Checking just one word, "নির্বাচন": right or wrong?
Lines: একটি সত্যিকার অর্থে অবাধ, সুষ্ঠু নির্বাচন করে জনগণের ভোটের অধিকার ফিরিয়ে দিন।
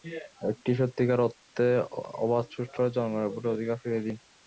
wrong